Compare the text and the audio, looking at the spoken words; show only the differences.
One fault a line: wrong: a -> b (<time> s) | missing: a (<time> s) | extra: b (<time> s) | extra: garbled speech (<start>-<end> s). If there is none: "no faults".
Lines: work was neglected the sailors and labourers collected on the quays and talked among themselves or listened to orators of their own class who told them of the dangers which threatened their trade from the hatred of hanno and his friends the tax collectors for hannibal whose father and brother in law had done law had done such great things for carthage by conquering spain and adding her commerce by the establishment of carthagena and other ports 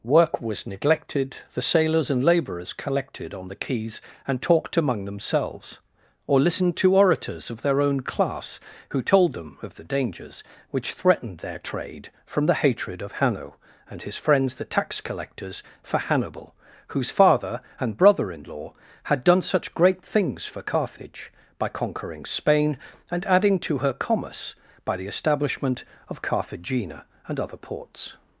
missing: law had done (19.4 s)
extra: to (23.6 s)